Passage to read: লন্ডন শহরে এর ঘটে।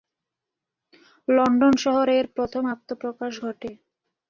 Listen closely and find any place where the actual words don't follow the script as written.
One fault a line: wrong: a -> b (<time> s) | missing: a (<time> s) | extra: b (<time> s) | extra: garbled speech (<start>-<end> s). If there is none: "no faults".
extra: প্রথম আত্মপ্রকাশ (2.4 s)